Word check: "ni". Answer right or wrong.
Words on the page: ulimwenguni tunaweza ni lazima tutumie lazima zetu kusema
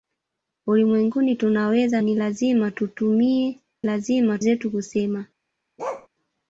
right